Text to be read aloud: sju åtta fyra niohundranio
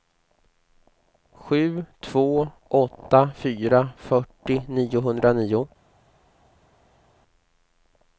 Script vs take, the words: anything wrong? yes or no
yes